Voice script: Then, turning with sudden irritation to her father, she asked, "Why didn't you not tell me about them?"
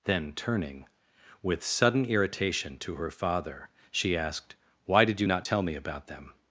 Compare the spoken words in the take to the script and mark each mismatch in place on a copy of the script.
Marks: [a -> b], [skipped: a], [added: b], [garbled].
Then, turning with sudden irritation to her father, she asked, "Why [didn't -> did] you not tell me about them?"